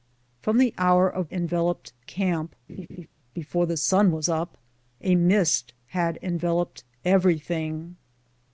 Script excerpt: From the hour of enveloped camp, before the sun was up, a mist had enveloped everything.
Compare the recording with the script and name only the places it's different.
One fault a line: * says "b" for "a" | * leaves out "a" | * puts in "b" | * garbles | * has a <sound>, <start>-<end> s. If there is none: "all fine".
* has a laugh, 2.7-3.1 s